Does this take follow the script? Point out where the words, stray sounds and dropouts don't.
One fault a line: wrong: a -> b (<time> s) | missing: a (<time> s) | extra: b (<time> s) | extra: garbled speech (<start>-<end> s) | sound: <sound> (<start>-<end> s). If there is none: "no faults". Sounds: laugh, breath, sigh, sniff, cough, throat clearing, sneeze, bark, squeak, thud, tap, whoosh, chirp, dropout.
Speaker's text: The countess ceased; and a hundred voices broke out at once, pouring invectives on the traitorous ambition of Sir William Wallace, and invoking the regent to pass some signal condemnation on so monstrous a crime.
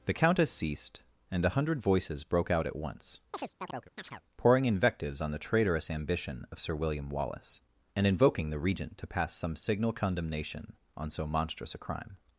sound: chirp (3.3-4.2 s)